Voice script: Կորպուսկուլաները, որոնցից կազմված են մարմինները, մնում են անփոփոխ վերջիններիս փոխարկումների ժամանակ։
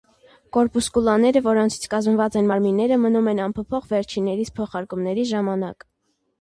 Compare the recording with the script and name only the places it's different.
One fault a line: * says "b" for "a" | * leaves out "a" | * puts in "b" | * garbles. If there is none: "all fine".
all fine